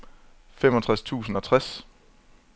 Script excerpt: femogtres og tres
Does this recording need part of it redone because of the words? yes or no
yes